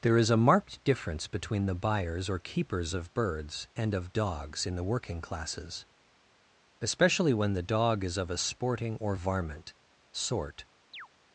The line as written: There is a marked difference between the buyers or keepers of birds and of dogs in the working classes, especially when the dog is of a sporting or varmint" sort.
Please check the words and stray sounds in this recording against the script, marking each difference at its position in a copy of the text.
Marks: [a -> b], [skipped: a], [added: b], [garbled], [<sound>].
There is a marked difference between the buyers or keepers of birds and of dogs in the working classes, especially when the dog is of a sporting or varmint" sort. [chirp]